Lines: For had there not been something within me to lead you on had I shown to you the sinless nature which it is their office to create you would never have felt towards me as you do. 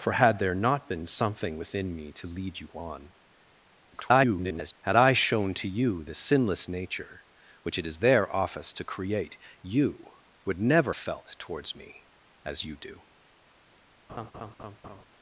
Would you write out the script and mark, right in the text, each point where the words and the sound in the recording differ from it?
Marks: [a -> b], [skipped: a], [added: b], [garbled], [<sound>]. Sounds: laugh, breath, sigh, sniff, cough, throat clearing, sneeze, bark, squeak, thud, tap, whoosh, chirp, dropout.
For had there not been something within me to lead you on [garbled] had I shown to you the sinless nature which it is their office to create you would never [skipped: have] felt towards me as you do. [laugh]